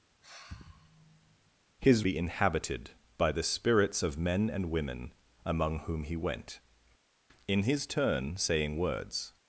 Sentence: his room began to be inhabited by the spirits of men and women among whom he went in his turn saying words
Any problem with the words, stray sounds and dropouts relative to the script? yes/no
yes